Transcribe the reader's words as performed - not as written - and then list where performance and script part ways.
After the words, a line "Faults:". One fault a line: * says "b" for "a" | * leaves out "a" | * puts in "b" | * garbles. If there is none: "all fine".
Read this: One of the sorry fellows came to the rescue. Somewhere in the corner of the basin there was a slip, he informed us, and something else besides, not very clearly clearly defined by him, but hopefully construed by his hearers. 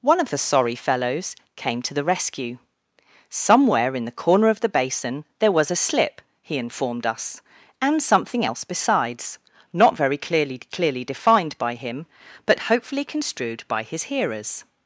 One of the sorry fellows came to the rescue. Somewhere in the corner of the basin there was a slip, he informed us, and something else besides, not very clearly clearly defined by him, but hopefully construed by his hearers.
Faults:
all fine